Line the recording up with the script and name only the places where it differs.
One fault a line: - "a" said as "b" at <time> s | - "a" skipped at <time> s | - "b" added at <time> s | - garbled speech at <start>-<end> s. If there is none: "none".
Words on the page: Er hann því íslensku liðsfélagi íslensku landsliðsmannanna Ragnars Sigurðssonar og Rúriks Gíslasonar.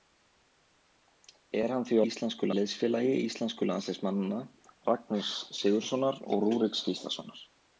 none